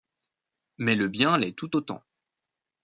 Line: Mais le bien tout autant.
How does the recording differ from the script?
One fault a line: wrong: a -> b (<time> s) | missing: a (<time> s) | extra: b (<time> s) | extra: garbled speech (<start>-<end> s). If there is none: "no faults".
extra: l'est (1.4 s)